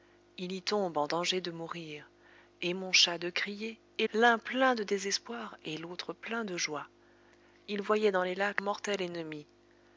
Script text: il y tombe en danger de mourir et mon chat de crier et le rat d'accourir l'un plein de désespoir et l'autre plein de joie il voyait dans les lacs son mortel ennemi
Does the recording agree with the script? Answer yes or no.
no